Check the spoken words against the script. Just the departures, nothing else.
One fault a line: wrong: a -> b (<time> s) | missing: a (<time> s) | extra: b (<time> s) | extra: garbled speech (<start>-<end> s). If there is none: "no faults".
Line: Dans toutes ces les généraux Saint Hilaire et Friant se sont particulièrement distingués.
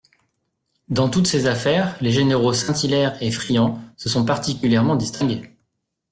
extra: affaires (1.4 s)